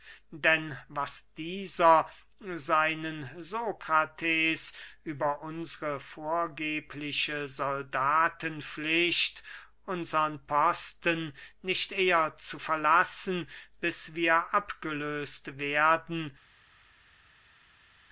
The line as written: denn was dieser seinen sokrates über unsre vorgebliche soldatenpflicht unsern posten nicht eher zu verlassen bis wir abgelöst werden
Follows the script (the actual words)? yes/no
yes